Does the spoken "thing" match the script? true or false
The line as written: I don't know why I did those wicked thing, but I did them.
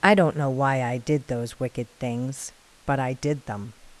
false